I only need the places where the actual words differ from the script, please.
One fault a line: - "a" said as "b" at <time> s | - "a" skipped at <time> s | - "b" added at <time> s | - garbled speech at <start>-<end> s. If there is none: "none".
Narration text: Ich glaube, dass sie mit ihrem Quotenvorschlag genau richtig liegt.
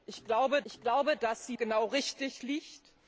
- "ich glaube" added at 0.6 s
- "mit ihrem Quotenvorschlag" skipped at 1.6 s